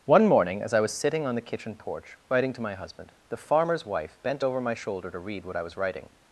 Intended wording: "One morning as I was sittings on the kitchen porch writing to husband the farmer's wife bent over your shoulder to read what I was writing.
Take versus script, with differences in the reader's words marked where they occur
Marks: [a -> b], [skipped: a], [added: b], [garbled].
"One morning as I was [sittings -> sitting] on the kitchen porch writing to [added: my] husband the farmer's wife bent over [your -> my] shoulder to read what I was writing.